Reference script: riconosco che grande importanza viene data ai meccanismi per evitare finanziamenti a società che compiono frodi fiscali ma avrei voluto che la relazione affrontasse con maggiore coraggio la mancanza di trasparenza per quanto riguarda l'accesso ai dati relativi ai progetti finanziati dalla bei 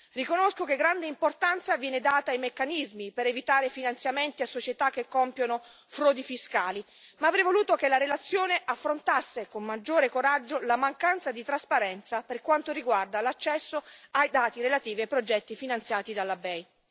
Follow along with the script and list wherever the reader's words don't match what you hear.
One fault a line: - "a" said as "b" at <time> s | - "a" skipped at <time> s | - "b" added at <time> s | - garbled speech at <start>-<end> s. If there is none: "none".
none